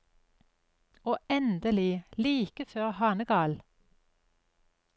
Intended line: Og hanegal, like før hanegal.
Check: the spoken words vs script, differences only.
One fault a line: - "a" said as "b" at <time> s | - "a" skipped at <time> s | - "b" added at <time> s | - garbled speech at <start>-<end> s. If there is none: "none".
- "hanegal" said as "endelig" at 1.3 s